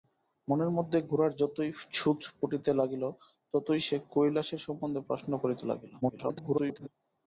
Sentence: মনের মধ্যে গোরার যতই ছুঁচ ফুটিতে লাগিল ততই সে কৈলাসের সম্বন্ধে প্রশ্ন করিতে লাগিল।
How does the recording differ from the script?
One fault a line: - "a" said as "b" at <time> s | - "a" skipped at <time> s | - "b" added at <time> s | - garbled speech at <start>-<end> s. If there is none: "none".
- garbled speech at 6.0-6.9 s